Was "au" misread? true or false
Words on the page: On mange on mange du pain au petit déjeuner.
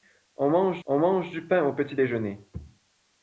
false